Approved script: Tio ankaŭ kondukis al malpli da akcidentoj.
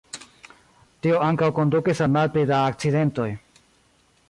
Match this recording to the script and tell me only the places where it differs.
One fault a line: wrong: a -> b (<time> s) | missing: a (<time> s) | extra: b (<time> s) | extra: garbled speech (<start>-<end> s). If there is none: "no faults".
no faults